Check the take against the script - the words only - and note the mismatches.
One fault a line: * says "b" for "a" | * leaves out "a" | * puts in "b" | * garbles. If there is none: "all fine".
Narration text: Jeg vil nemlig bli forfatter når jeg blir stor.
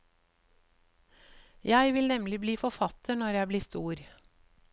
all fine